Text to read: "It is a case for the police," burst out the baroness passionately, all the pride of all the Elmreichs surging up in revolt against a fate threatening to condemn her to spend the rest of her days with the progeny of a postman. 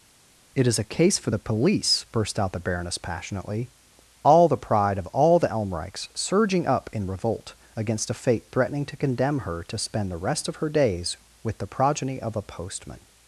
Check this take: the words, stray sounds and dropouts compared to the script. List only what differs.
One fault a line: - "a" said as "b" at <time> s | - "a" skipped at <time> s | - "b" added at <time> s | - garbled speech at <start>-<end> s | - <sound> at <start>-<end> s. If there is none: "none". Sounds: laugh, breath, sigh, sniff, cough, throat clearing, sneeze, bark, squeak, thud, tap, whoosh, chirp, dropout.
none